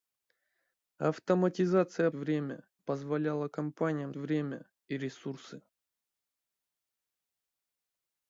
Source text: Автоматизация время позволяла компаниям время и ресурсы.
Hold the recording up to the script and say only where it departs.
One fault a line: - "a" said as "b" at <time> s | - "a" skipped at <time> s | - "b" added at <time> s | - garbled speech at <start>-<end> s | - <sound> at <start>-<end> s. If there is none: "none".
none